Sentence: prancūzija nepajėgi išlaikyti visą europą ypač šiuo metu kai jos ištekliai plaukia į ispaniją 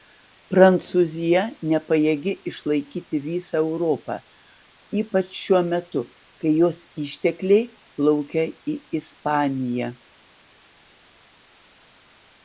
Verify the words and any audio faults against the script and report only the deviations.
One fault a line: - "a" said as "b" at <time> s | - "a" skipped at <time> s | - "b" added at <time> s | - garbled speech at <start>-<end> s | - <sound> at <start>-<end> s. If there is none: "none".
none